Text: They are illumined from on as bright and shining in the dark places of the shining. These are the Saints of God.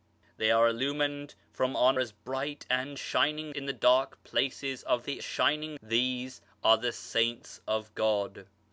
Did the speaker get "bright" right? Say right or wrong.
right